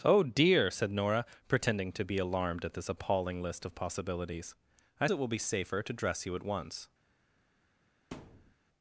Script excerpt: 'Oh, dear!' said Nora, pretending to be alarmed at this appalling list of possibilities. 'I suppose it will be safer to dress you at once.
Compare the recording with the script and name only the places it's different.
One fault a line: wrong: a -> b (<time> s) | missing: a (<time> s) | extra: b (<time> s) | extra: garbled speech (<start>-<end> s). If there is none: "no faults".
missing: suppose (5.1 s)